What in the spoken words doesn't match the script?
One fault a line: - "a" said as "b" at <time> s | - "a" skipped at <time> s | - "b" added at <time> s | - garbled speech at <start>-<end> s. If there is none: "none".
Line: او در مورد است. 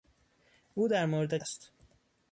none